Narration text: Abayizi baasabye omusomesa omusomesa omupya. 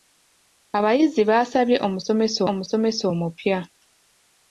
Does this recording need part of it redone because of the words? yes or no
no